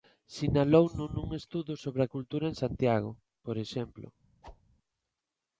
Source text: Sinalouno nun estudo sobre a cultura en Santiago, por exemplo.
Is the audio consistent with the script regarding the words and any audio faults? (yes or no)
no